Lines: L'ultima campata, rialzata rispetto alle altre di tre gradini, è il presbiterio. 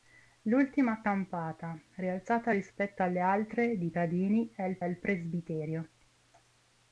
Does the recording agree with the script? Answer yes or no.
no